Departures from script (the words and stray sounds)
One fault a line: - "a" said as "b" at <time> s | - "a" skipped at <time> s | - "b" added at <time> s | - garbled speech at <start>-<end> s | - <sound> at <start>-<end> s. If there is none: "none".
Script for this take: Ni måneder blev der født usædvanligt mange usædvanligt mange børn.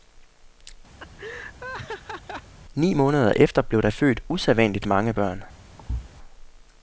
- laugh at 1.0-2.5 s
- "efter" added at 3.4 s
- "usædvanligt mange" skipped at 5.1 s
- thud at 5.8-6.1 s